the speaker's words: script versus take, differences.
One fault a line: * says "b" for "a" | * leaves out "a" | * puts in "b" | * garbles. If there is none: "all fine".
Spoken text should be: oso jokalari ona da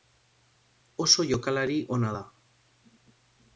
all fine